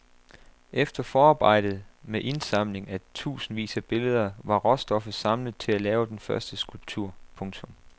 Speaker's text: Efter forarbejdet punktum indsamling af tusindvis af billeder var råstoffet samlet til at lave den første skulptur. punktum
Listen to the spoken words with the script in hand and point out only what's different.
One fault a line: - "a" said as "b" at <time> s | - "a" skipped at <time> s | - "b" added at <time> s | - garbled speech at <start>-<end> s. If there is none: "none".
- "punktum" said as "med" at 2.0 s